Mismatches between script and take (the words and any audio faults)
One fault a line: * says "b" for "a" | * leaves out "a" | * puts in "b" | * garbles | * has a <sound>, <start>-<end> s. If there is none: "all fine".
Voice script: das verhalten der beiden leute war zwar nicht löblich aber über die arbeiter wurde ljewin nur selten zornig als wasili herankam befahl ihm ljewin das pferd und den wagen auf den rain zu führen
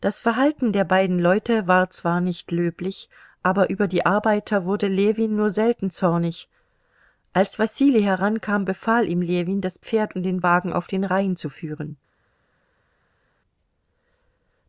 all fine